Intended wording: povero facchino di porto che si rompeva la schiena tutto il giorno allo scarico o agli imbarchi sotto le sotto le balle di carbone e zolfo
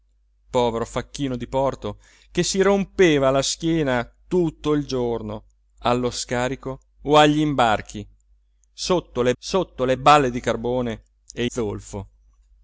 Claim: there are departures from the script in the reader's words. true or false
false